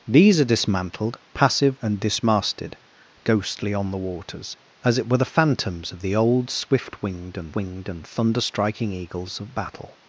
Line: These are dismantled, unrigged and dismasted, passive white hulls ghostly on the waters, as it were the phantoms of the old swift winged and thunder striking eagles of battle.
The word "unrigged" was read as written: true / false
false